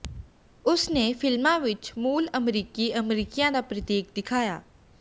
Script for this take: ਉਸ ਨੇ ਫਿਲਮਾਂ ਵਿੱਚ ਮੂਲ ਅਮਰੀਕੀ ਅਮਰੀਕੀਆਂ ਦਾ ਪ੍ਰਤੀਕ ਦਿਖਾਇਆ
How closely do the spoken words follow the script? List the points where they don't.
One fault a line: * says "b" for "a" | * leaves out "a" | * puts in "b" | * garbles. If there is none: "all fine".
all fine